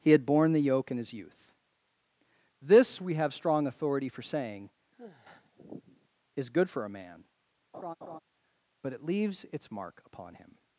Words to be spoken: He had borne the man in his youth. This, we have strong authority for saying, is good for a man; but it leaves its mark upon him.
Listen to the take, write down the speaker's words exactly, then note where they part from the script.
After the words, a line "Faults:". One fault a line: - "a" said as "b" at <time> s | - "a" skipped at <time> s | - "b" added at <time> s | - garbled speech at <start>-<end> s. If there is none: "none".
He had borne the yoke in his youth. This, we have strong authority for saying, is good for a man; but it leaves its mark upon him.
Faults:
- "man" said as "yoke" at 0.6 s